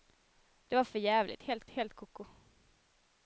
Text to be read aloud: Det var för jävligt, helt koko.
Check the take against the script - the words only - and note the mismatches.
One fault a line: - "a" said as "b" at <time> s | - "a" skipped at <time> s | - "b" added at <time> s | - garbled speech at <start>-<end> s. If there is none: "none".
- "helt" added at 1.7 s